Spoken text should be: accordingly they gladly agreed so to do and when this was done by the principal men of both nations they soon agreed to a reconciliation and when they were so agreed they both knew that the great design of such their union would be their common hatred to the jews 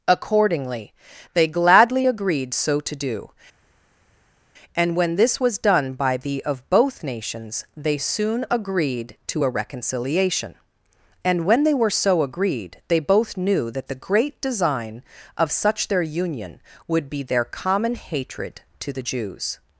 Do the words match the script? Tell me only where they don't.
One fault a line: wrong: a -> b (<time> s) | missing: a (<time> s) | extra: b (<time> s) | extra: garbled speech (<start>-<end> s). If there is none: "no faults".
missing: principal men (6.4 s)